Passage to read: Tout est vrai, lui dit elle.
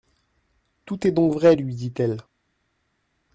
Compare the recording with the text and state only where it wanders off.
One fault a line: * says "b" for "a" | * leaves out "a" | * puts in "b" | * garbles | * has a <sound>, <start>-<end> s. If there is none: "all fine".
* puts in "donc"